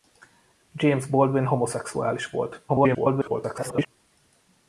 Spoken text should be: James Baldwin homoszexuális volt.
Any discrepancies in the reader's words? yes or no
yes